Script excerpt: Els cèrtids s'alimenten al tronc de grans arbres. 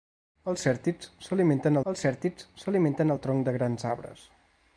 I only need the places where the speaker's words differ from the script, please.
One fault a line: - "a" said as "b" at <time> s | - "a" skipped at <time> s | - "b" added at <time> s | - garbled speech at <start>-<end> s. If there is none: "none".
- "els cèrtids s'alimenten" added at 1.9 s